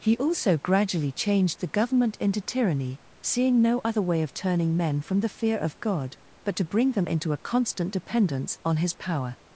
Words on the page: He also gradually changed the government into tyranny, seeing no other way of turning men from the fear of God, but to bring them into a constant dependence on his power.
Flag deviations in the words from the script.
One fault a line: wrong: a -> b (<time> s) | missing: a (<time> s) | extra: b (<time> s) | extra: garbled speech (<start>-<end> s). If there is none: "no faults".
no faults